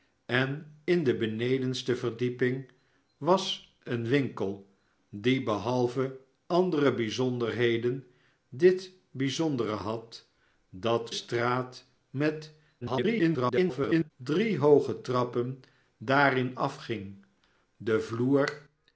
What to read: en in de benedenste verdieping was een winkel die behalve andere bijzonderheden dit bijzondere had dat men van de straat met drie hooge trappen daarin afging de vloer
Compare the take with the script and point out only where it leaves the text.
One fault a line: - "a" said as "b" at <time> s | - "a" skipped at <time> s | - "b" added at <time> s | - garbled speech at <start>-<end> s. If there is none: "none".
- "men van de" skipped at 11.1 s
- garbled speech at 12.8-14.1 s